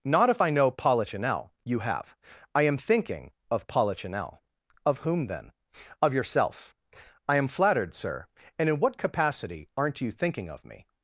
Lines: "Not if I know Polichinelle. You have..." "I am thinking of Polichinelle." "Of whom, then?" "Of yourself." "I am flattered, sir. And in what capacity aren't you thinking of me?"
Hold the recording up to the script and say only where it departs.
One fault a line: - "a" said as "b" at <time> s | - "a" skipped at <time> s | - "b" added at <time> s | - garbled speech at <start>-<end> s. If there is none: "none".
none